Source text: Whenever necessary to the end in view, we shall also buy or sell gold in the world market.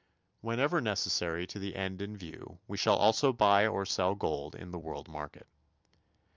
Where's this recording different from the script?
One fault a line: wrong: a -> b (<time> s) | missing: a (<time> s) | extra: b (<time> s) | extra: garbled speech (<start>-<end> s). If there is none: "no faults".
no faults